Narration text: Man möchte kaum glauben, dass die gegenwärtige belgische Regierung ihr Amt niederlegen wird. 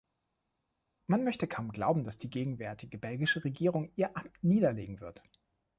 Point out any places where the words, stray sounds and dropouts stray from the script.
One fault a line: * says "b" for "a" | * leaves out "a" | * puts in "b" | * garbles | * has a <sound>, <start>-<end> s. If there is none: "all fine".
all fine